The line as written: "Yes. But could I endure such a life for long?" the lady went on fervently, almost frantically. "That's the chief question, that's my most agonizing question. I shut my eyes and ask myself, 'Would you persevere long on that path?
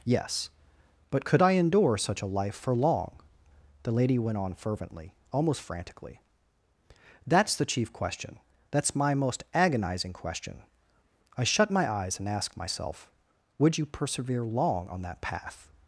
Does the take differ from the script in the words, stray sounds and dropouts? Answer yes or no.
no